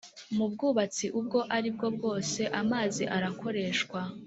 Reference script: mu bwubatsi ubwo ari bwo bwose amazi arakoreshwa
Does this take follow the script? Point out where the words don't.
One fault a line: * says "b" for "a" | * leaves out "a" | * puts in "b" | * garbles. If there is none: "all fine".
all fine